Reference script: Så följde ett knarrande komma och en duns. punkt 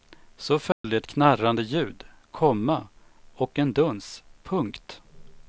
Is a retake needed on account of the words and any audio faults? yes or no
yes